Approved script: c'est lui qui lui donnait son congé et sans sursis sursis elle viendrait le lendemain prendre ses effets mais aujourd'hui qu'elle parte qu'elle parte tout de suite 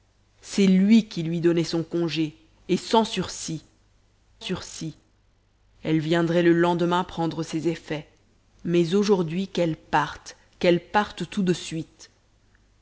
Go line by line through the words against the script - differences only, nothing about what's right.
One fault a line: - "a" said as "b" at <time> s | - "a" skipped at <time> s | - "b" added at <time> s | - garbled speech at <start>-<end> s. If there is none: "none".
none